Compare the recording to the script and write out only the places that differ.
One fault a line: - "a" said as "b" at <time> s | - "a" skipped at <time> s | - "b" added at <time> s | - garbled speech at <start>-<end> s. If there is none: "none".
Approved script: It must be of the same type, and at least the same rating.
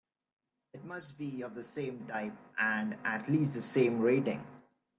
none